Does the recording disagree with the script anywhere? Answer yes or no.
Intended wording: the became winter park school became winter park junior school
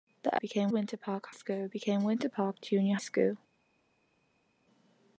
no